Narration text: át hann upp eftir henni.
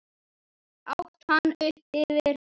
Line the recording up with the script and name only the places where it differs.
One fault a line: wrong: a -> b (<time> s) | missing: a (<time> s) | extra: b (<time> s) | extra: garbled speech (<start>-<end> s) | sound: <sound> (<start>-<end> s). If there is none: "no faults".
no faults